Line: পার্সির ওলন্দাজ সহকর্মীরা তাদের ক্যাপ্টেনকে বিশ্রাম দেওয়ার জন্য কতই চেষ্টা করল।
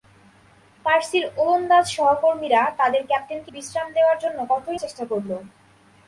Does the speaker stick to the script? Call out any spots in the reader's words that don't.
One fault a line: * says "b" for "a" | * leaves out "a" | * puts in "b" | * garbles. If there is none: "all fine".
all fine